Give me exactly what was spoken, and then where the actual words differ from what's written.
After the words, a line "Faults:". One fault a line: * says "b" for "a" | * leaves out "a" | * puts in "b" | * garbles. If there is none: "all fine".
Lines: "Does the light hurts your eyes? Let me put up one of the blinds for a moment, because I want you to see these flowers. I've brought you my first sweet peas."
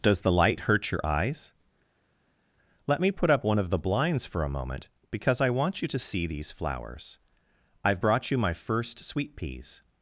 "Does the light hurt your eyes? Let me put up one of the blinds for a moment, because I want you to see these flowers. I've brought you my first sweet peas."
Faults:
* says "hurt" for "hurts"